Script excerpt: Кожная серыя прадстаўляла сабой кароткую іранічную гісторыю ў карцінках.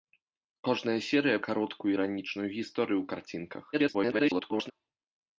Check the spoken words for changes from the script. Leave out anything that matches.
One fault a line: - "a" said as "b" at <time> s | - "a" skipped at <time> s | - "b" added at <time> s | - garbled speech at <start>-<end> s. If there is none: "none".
- "прадстаўляла сабой" skipped at 1.4 s
- garbled speech at 3.7-4.7 s